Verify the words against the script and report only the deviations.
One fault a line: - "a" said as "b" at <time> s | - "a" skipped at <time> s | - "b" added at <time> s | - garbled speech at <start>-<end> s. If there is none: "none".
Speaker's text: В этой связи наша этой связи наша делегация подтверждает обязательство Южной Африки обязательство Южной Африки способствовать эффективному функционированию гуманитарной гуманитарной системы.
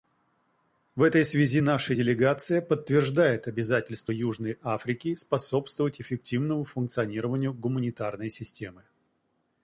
- "этой связи наша" skipped at 1.9 s
- "обязательство Южной Африки" skipped at 5.1 s
- "гуманитарной" skipped at 8.3 s